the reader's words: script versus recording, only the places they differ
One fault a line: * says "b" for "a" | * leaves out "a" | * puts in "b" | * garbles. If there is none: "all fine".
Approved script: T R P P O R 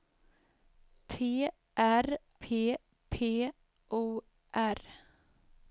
all fine